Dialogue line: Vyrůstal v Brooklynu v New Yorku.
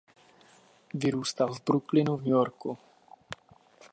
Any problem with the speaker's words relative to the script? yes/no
no